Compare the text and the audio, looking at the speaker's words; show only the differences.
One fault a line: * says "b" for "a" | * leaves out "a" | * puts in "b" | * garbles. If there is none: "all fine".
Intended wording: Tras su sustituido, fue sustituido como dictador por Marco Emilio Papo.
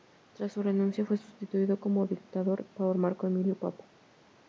* says "renuncia" for "sustituido"